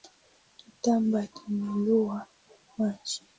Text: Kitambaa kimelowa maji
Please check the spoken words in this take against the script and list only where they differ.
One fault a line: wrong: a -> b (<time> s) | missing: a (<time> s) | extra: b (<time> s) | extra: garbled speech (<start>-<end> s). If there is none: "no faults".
no faults